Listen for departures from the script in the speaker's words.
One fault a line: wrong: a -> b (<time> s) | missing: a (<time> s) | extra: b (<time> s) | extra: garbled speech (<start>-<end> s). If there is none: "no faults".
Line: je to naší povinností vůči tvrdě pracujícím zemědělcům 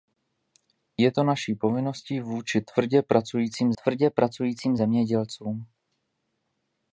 extra: tvrdě pracujícím (3.7 s)